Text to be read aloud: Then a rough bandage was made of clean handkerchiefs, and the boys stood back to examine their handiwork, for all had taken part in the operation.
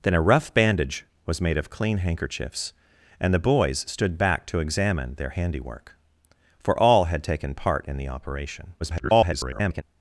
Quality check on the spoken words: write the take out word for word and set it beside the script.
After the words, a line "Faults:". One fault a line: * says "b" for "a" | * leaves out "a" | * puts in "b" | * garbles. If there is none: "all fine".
Then a rough bandage was made of clean handkerchiefs, and the boys stood back to examine their handiwork, for all had taken part in the operation. [garbled]
Faults:
* garbles